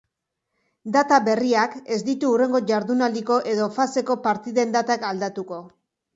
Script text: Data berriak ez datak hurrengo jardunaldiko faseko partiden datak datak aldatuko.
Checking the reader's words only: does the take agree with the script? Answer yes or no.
no